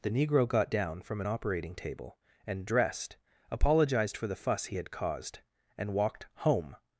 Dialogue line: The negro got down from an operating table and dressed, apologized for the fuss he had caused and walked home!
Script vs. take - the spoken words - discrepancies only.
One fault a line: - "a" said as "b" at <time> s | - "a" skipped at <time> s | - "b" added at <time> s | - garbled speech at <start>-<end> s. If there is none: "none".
none